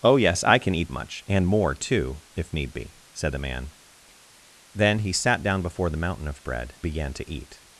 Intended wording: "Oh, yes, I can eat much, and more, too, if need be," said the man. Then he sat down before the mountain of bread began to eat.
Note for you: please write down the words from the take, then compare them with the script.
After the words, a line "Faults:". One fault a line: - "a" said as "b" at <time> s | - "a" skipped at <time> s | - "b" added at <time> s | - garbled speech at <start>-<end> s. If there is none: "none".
"Oh, yes, I can eat much, and more, too, if need be," said the man. Then he sat down before the mountain of bread began to eat.
Faults:
none